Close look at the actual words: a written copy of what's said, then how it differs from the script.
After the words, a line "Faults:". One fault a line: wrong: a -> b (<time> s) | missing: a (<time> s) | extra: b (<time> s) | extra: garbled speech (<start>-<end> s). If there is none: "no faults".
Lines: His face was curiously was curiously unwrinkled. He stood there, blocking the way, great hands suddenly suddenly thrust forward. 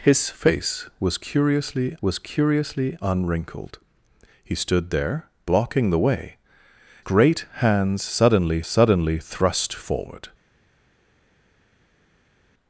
His face was curiously was curiously unwrinkled. He stood there, blocking the way, great hands suddenly suddenly thrust forward.
Faults:
no faults